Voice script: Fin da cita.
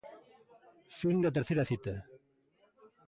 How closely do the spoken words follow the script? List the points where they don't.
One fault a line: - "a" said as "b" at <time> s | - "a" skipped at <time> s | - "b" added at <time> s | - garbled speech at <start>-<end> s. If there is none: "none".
- "terceira" added at 1.4 s